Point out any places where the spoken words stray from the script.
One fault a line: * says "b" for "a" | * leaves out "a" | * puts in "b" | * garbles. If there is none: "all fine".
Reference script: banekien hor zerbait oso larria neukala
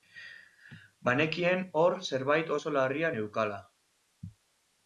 all fine